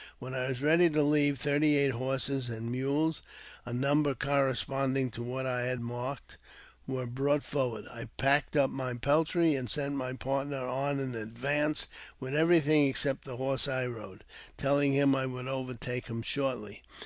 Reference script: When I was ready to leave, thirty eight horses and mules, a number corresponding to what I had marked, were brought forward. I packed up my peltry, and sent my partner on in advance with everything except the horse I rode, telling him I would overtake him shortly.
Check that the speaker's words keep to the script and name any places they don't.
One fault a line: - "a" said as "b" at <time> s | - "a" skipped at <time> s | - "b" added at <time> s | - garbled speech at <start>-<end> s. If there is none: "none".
none